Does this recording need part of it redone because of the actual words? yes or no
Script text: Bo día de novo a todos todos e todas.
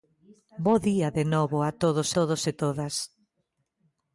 no